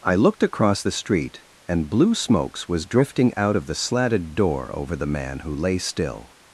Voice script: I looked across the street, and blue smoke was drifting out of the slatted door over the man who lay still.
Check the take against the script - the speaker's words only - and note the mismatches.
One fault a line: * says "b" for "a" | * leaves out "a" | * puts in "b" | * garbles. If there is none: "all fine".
* says "smokes" for "smoke"